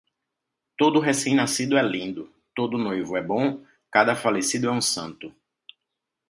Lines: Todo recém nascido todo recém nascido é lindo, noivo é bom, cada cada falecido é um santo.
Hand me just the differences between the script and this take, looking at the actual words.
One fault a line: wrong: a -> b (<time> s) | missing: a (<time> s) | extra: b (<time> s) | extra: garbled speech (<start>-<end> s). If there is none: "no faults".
missing: todo recém nascido (1.8 s)
extra: todo (2.5 s)
missing: cada (4.2 s)